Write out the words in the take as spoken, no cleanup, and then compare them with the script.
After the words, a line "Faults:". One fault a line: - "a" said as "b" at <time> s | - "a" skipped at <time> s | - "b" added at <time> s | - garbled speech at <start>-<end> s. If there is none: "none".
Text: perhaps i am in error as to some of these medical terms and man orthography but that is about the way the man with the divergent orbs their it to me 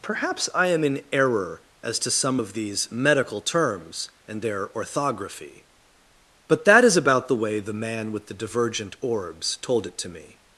perhaps i am in error as to some of these medical terms and their orthography but that is about the way the man with the divergent orbs told it to me
Faults:
- "man" said as "their" at 4.4 s
- "their" said as "told" at 9.6 s